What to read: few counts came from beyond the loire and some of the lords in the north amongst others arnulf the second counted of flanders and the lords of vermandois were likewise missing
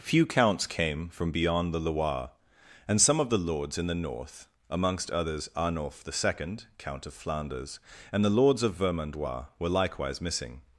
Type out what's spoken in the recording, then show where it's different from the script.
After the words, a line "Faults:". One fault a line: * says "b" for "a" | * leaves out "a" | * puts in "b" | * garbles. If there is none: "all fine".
few counts came from beyond the loire and some of the lords in the north amongst others arnulf the second count of flanders and the lords of vermandois were likewise missing
Faults:
* says "count" for "counted"